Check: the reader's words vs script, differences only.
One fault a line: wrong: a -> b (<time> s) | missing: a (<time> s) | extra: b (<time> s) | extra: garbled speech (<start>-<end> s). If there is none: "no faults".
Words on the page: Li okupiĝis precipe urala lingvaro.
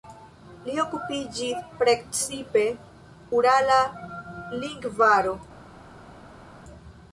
no faults